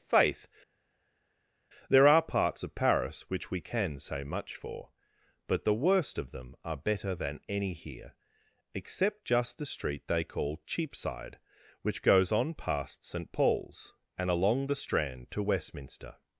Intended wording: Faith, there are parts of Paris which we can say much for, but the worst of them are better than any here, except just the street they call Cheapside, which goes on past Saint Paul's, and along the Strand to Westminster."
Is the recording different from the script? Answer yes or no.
no